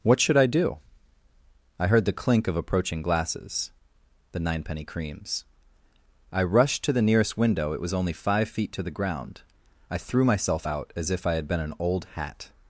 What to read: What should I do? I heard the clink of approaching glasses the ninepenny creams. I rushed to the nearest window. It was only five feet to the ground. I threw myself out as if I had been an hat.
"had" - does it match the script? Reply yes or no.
yes